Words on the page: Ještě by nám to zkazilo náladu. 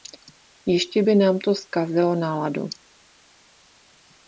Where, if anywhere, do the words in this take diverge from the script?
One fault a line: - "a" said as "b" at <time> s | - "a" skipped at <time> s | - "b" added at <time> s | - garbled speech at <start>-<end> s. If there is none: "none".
none